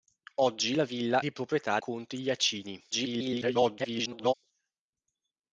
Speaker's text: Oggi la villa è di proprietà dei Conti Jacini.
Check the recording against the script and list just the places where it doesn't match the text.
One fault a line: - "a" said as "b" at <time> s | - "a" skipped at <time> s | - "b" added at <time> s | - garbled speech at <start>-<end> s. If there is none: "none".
- "è" skipped at 1.2 s
- "dei" skipped at 1.8 s
- garbled speech at 2.9-4.3 s